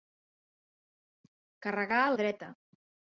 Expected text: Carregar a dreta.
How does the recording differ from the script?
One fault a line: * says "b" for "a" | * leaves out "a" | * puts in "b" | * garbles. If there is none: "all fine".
all fine